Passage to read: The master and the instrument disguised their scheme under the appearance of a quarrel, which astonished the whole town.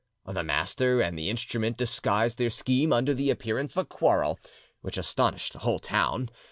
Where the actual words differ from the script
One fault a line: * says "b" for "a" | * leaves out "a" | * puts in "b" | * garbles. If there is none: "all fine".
* leaves out "of"